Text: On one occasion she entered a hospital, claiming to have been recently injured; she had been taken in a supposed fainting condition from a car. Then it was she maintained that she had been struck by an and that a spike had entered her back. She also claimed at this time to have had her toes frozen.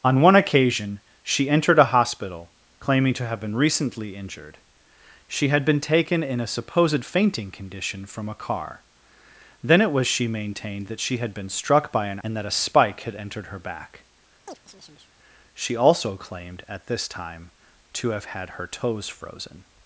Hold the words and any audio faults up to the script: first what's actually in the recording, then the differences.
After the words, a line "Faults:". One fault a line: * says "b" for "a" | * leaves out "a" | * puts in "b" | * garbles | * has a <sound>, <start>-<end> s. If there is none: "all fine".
On one occasion she entered a hospital, claiming to have been recently injured; she had been taken in a supposed fainting condition from a car. Then it was she maintained that she had been struck by an and that a spike had entered her back. She also claimed at this time to have had her toes frozen.
Faults:
* has a chirp, 14.5-15.1 s